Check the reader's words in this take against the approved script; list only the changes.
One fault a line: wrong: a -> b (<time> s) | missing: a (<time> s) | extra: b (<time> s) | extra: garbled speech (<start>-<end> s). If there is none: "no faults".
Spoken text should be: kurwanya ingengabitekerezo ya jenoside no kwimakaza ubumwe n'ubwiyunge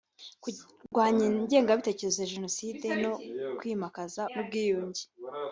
missing: ubumwe (4.2 s)